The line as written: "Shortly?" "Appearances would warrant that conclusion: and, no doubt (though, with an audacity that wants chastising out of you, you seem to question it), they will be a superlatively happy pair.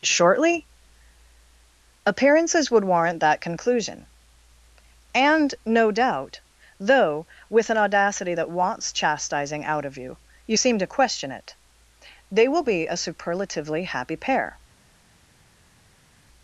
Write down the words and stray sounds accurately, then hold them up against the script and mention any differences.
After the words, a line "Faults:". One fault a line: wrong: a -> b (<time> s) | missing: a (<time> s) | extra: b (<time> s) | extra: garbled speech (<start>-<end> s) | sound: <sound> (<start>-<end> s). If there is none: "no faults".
"Shortly?" "Appearances would warrant that conclusion: and, no doubt (though, with an audacity that wants chastising out of you, you seem to question it), they will be a superlatively happy pair.
Faults:
no faults